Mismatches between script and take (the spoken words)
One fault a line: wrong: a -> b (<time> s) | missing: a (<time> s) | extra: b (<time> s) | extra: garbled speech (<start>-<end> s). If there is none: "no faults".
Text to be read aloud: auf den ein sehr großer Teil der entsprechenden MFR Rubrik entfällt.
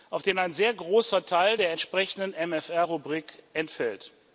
no faults